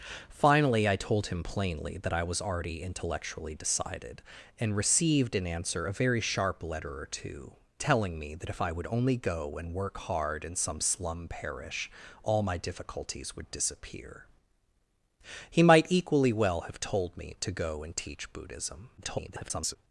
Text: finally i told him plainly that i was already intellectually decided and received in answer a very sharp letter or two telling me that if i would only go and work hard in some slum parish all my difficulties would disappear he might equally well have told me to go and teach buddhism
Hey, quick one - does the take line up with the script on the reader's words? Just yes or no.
no